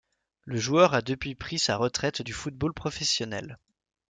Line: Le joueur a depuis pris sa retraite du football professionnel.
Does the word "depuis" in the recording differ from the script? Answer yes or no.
no